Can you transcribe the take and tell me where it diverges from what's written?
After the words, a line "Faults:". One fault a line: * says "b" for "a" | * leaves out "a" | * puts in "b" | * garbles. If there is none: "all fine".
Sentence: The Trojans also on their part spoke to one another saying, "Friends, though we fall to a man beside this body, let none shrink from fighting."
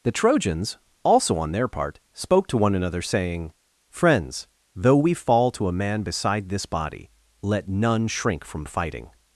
The Trojans also on their part spoke to one another saying, "Friends, though we fall to a man beside this body, let none shrink from fighting."
Faults:
all fine